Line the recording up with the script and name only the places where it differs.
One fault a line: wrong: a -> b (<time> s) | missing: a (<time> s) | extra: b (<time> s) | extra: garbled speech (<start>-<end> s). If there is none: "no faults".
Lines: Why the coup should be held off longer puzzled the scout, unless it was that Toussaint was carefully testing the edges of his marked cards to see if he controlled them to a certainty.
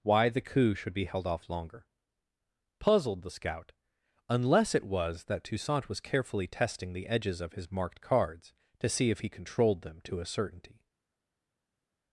no faults